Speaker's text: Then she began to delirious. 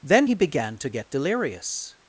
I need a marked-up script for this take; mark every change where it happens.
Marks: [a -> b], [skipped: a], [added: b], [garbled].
Then [she -> he] began to [added: get] delirious.